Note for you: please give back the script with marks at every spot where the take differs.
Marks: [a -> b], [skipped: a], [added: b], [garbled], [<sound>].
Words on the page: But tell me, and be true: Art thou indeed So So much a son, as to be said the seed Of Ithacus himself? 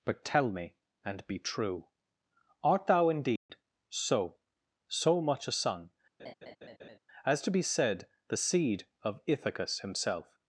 But tell me, and be true: Art thou indeed [dropout] So So much a son, [laugh] as to be said the seed Of Ithacus himself?